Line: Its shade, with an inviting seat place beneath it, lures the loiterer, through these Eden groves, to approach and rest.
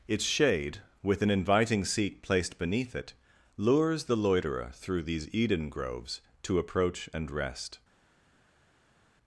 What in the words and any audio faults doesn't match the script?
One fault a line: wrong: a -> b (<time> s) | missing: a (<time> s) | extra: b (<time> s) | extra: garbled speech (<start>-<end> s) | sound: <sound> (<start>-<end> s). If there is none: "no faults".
wrong: place -> placed (2.2 s)